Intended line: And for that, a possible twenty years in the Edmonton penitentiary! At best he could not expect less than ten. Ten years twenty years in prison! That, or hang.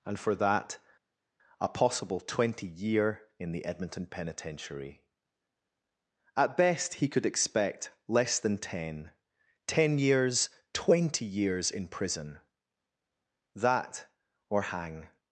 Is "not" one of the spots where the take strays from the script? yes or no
yes